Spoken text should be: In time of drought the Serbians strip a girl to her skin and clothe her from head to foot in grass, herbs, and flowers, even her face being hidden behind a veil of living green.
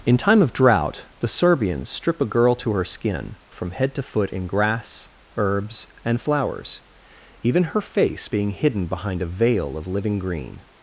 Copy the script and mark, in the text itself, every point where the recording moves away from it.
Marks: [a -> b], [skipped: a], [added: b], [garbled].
In time of drought the Serbians strip a girl to her skin [skipped: and clothe her] from head to foot in grass, herbs, and flowers, even her face being hidden behind a veil of living green.